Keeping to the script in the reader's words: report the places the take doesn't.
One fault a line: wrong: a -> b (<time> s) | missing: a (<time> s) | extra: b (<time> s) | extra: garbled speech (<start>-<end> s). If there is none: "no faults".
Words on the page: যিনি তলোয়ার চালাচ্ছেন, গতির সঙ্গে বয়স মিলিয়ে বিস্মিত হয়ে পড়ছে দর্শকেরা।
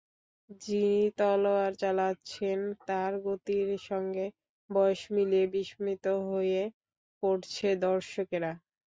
extra: তাঁর (2.9 s)